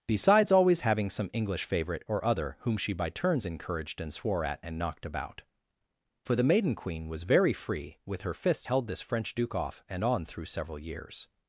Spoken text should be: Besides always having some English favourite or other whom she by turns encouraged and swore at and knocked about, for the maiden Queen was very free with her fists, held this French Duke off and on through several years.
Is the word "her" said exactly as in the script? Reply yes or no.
yes